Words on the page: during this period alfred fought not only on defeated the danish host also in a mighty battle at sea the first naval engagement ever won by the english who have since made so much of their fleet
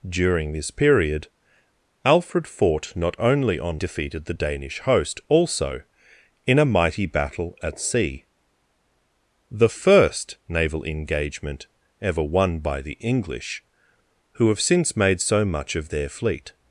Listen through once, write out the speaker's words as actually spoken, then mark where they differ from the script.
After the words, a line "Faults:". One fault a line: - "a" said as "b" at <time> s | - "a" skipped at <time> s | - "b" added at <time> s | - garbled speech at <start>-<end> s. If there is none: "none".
during this period alfred fought not only on defeated the danish host also in a mighty battle at sea the first naval engagement ever won by the english who have since made so much of their fleet
Faults:
none